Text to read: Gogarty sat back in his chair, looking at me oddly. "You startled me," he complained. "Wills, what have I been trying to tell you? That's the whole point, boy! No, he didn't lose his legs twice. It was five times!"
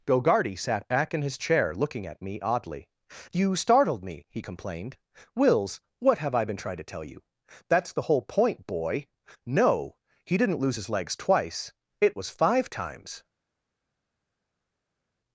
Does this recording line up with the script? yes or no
yes